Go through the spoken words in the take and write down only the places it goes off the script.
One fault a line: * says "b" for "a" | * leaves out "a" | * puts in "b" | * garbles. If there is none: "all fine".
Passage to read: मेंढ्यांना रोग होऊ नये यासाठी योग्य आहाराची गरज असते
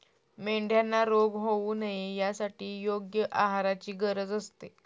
all fine